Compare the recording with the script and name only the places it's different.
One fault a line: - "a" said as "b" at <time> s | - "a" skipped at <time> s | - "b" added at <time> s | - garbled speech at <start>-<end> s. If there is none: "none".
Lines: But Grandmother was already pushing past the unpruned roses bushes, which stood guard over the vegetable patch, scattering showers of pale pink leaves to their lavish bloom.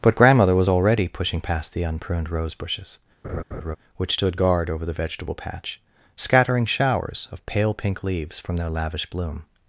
- "roses" said as "rose" at 2.3 s
- "to" said as "from" at 8.4 s